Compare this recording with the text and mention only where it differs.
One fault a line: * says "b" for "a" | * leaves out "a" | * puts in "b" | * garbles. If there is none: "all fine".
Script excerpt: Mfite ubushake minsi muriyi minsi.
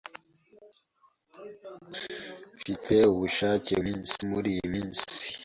all fine